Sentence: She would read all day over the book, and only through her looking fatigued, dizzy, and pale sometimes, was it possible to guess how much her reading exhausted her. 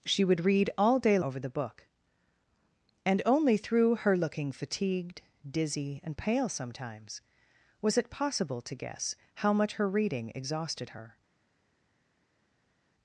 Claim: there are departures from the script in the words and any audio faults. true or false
false